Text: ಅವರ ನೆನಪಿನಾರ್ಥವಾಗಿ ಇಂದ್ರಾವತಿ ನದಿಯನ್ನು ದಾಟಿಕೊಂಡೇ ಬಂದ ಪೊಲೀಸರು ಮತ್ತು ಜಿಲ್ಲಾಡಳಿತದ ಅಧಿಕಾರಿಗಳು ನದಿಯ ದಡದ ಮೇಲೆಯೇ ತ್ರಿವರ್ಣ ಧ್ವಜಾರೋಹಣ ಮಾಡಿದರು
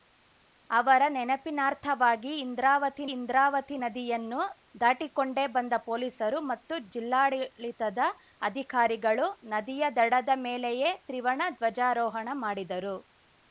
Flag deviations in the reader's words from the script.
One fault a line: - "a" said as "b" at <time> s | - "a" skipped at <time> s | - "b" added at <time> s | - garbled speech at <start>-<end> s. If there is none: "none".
- "ಇಂದ್ರಾವತಿ" added at 3.1 s